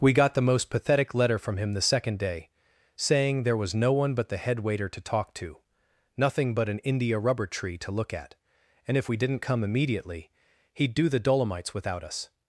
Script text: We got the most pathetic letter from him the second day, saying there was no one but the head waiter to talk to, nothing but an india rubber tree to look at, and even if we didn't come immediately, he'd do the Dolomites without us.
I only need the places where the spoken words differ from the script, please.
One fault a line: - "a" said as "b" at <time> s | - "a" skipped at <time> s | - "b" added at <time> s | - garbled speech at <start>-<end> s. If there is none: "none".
- "even" skipped at 9.0 s